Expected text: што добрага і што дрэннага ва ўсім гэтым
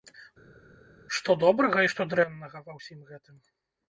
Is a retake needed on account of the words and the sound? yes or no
no